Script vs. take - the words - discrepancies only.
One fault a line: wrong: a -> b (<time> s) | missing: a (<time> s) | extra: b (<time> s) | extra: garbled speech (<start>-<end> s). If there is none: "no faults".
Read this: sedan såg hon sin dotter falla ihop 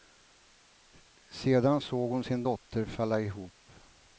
no faults